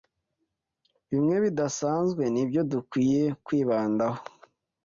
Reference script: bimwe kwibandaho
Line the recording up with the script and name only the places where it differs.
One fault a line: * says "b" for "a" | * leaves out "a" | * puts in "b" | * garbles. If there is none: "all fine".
* puts in "bidasanzwe nibyo dukwiye"